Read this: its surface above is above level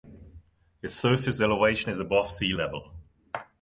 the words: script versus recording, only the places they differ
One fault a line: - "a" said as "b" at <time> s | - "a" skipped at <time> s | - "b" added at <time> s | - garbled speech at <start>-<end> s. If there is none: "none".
- "above" said as "elevation" at 1.4 s
- "sea" added at 2.3 s